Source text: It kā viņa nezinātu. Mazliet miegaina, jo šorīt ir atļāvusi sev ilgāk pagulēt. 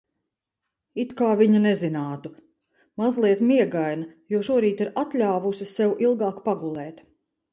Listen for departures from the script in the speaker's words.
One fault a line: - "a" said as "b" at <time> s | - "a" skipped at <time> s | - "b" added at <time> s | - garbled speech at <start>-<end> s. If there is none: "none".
none